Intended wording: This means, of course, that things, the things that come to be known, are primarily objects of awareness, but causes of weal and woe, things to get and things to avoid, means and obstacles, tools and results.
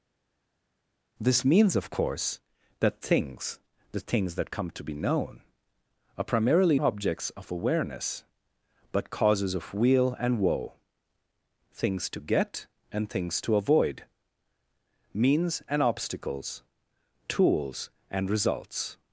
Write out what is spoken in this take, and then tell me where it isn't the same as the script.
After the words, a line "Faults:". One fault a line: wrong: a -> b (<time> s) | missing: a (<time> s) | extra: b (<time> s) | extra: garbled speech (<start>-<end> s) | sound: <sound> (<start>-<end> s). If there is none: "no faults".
This means, of course, that things, the things that come to be known, are primarily objects of awareness, but causes of weal and woe, things to get and things to avoid, means and obstacles, tools and results.
Faults:
no faults